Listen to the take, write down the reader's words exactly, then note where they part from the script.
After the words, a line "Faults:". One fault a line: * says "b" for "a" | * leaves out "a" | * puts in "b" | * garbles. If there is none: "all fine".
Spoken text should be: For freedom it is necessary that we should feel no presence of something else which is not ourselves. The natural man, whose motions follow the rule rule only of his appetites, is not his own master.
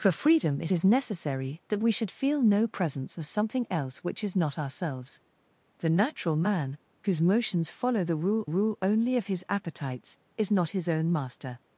For freedom it is necessary that we should feel no presence of something else which is not ourselves. The natural man, whose motions follow the rule rule only of his appetites, is not his own master.
Faults:
all fine